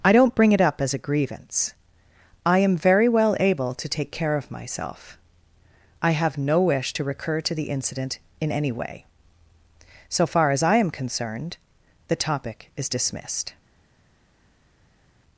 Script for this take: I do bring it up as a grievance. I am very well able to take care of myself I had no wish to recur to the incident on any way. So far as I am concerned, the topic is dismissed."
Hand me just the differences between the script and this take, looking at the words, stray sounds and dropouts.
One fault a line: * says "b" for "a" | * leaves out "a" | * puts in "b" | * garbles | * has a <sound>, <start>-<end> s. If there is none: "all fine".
* says "don't" for "do"
* says "have" for "had"
* says "in" for "on"